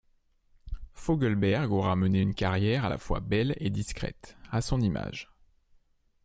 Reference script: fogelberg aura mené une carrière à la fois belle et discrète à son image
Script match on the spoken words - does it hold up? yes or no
yes